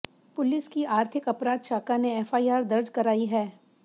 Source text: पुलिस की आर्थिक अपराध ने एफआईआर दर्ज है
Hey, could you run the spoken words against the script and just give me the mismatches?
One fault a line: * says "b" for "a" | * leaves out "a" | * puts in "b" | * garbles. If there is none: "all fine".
* puts in "शाखा"
* puts in "कराई"